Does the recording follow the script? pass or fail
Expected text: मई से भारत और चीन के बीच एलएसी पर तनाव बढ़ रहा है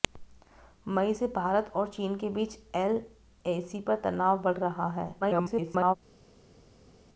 fail